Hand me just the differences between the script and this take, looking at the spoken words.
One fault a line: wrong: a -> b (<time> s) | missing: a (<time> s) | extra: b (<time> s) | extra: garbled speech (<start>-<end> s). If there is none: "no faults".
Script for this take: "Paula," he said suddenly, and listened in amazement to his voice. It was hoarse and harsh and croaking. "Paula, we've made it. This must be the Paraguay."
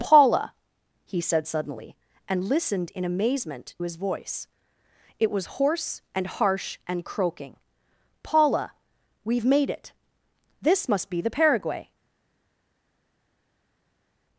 missing: to (3.8 s)